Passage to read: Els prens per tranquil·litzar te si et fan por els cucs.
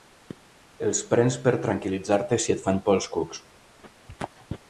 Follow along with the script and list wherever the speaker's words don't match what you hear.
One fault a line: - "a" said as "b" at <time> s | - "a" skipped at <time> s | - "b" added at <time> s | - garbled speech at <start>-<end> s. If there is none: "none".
none